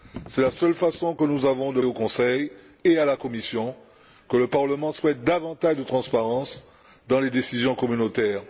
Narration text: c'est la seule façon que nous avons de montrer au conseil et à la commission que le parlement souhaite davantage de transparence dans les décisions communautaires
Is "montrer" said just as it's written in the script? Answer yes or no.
no